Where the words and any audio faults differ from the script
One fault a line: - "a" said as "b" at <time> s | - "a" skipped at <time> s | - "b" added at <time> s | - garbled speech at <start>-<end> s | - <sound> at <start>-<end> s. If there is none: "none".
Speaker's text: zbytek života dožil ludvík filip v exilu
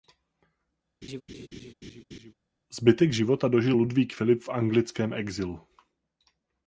- laugh at 1.0-2.3 s
- "anglickém" added at 4.5 s